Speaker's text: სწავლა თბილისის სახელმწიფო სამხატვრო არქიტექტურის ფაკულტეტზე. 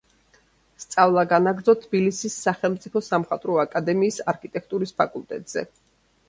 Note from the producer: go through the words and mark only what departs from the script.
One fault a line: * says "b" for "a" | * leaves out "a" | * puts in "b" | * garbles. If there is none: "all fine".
* puts in "განაგრძო"
* puts in "აკადემიის"